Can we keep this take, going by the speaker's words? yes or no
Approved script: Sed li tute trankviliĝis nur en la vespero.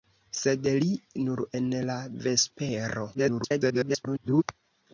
no